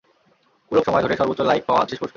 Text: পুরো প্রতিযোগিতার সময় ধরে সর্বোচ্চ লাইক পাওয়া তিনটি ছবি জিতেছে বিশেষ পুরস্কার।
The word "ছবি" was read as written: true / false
false